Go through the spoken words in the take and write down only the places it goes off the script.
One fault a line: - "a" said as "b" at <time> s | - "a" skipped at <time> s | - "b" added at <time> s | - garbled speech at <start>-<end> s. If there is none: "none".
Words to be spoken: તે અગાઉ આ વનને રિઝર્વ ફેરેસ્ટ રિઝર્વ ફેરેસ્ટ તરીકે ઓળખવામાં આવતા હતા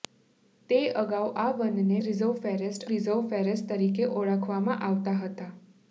none